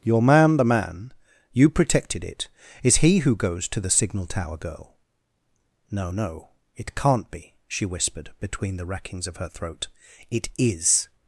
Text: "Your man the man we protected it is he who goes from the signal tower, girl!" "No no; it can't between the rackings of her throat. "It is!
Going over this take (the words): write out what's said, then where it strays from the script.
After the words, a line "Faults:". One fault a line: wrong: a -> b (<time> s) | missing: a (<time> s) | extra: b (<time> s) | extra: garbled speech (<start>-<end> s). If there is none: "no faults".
"Your man the man you protected it is he who goes to the signal tower, girl!" "No no; it can't be," she whispered between the rackings of her throat. "It is!
Faults:
wrong: we -> you (1.5 s)
wrong: from -> to (3.7 s)
extra: be she whispered (7.3 s)